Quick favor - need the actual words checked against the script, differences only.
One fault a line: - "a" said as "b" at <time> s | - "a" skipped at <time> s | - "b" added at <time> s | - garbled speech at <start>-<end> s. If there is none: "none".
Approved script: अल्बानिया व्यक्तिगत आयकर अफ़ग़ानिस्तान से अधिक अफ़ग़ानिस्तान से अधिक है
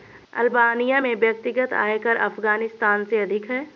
- "में" added at 1.0 s
- "अफ़ग़ानिस्तान से अधिक" skipped at 3.5 s